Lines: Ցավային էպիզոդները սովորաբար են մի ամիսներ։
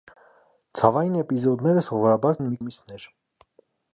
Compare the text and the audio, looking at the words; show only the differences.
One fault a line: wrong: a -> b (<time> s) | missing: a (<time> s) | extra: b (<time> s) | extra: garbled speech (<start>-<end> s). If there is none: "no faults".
no faults